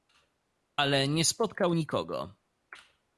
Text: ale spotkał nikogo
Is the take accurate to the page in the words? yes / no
no